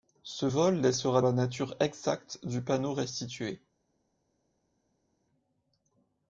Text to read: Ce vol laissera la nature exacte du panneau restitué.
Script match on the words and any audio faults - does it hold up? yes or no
yes